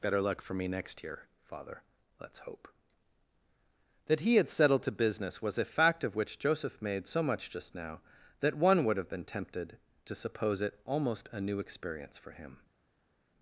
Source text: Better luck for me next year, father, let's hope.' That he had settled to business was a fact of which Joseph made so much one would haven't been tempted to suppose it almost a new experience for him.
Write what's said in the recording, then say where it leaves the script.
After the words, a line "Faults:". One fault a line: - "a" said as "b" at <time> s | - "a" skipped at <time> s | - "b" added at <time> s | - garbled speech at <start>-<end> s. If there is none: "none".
Better luck for me next year, father, let's hope.' That he had settled to business was a fact of which Joseph made so much just now that one would have been tempted to suppose it almost a new experience for him.
Faults:
- "just now that" added at 7.5 s
- "haven't" said as "have" at 9.0 s